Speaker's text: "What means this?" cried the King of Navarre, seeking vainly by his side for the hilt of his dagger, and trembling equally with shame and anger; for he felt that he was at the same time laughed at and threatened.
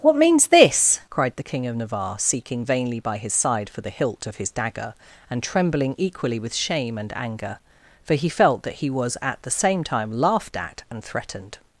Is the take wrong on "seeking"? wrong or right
right